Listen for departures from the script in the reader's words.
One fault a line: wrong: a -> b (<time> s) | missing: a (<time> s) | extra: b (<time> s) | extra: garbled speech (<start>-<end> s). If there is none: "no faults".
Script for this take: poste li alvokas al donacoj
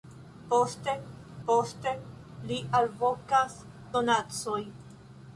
extra: poste (1.5 s)
missing: al (3.6 s)